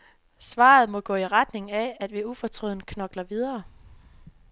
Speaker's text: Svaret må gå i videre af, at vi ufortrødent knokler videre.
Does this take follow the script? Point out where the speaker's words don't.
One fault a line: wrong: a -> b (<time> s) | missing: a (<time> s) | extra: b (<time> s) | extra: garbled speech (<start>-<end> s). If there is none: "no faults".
wrong: videre -> retning (1.3 s)